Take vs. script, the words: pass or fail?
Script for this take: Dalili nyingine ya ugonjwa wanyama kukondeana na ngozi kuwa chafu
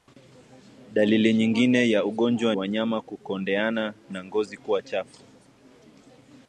pass